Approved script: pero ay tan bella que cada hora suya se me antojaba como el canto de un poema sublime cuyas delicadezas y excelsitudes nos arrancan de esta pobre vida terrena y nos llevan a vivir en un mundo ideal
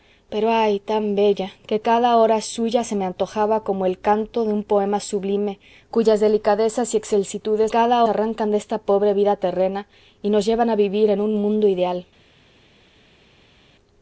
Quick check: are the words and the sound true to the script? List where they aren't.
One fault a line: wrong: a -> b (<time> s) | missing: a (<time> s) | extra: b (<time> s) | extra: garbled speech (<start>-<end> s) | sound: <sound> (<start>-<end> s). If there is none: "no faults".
wrong: nos -> cada (7.7 s)